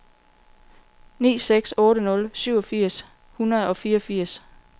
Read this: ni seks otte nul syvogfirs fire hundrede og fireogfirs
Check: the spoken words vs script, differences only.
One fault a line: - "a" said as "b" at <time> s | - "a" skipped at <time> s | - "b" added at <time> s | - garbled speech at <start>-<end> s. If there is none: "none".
- "fire" skipped at 3.0 s